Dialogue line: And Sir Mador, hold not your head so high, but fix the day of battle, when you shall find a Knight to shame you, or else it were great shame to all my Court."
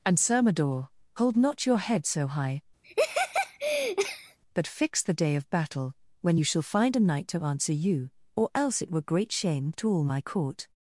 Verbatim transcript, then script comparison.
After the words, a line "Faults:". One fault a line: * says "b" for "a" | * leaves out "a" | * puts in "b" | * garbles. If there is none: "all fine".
And Sir Mador, hold not your head so high, but fix the day of battle, when you shall find a Knight to answer you, or else it were great shame to all my Court."
Faults:
* says "answer" for "shame"